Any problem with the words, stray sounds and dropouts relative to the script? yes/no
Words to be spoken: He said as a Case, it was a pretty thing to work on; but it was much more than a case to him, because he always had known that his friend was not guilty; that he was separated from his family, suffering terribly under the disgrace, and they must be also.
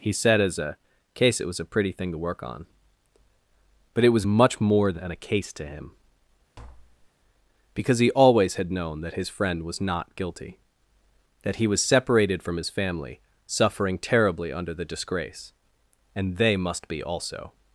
yes